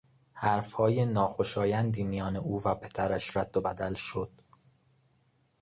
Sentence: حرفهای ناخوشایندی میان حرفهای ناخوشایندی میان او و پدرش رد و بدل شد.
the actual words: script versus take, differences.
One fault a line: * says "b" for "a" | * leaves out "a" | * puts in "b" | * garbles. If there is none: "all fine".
* leaves out "حرفهای ناخوشایندی میان"